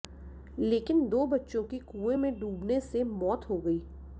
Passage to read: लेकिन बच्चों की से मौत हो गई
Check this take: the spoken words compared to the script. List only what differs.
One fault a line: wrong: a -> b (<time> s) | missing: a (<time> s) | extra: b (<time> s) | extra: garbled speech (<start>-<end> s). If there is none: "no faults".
extra: दो (1.1 s)
extra: कुएं में डूबने (1.8 s)